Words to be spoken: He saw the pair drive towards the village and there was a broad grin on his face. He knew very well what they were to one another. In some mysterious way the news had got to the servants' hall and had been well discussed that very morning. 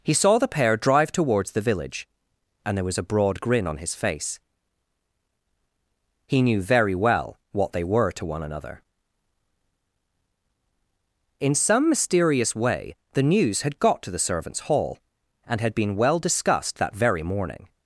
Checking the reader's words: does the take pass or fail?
pass